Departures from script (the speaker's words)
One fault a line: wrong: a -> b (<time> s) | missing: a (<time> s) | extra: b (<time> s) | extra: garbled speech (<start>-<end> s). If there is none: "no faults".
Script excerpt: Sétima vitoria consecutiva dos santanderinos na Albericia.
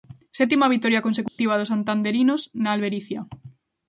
no faults